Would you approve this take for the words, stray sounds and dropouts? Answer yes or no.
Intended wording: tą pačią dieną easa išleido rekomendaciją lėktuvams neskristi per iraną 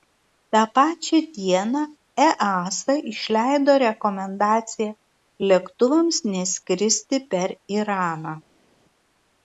yes